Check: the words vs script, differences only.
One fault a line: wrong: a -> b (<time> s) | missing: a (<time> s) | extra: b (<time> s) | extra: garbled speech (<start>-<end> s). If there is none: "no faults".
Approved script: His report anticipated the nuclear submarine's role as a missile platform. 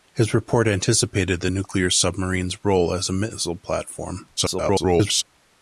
extra: garbled speech (4.4-5.2 s)